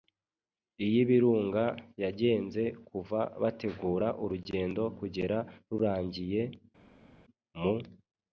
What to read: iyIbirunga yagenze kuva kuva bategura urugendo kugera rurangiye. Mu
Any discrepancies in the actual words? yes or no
yes